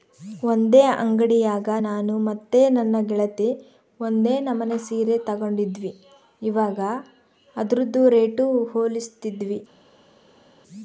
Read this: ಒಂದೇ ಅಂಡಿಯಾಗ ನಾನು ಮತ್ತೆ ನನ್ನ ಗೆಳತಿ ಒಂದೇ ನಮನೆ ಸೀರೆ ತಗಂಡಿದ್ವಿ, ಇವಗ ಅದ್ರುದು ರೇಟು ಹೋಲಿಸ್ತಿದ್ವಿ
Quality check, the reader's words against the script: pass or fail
pass